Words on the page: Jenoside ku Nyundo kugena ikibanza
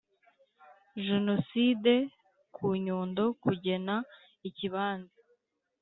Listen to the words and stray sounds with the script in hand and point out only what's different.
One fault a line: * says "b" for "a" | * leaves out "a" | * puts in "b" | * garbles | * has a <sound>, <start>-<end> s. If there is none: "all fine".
all fine